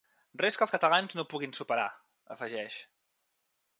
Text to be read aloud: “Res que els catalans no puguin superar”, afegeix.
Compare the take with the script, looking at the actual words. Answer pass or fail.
pass